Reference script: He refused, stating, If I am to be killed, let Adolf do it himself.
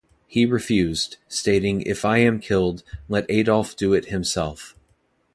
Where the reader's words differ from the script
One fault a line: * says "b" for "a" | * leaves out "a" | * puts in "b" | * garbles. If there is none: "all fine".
* leaves out "to be"